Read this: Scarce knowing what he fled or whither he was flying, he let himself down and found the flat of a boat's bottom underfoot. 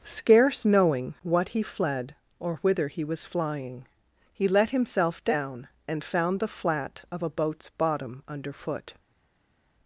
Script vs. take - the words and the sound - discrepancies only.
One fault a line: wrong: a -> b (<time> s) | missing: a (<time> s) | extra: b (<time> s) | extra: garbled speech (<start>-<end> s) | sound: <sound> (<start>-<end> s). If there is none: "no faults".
no faults